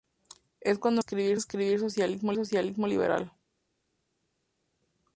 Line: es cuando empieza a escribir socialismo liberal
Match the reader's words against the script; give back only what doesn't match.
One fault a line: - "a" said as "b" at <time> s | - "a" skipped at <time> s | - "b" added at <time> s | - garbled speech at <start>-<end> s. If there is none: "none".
- "empieza" said as "escribir" at 1.0 s
- "socialismo" added at 2.3 s